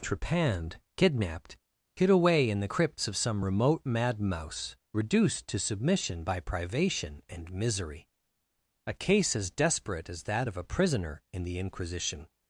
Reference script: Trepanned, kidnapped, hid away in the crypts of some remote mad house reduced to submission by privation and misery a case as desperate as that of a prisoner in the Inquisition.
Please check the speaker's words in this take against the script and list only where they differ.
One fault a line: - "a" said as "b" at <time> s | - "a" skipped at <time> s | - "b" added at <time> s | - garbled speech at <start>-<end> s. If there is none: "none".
- "house" said as "mouse" at 4.2 s